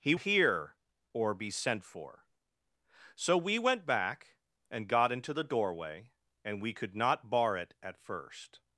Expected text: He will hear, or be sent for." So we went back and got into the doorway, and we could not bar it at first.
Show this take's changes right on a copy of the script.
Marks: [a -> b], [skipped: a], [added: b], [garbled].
He [skipped: will] hear, or be sent for." So we went back and got into the doorway, and we could not bar it at first.